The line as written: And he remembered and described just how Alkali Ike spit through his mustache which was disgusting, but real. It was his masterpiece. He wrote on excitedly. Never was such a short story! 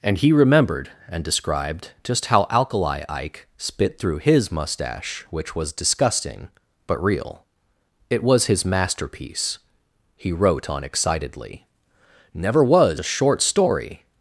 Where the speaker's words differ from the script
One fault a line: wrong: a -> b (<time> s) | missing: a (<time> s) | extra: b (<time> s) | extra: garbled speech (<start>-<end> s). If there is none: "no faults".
missing: such (13.0 s)